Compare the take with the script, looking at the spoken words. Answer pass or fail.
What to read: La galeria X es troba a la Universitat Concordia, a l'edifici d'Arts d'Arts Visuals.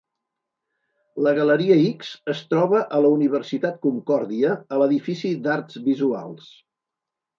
fail